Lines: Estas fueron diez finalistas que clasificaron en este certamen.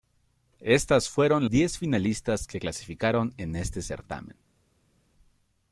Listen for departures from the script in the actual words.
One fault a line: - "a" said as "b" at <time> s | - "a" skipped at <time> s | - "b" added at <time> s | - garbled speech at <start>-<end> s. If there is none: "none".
none